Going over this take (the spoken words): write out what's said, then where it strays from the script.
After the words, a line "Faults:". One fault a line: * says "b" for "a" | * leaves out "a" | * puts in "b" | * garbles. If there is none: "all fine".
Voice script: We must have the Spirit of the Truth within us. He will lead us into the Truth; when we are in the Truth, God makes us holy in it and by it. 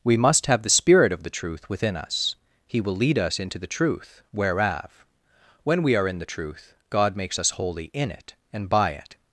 We must have the Spirit of the Truth within us. He will lead us into the Truth; whereof when we are in the Truth, God makes us holy in it and by it.
Faults:
* puts in "whereof"